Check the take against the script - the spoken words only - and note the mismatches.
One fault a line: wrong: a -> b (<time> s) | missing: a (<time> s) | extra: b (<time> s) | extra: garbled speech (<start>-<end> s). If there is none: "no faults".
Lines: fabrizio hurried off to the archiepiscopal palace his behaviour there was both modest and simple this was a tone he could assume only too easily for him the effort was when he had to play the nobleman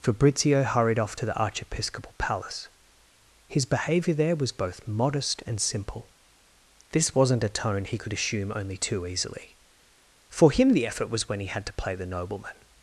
wrong: was -> wasn't (7.1 s)